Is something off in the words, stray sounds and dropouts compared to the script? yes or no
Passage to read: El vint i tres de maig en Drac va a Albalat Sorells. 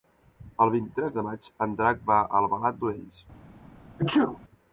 yes